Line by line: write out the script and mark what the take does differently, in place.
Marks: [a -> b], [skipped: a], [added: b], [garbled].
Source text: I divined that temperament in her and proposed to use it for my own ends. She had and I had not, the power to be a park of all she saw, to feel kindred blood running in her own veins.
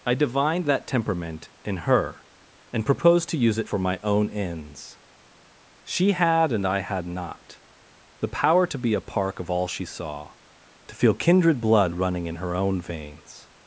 I divined that temperament in her and proposed to use it for my own ends. She had and I had not, the power to be a park of all she saw, to feel kindred blood running in her own veins.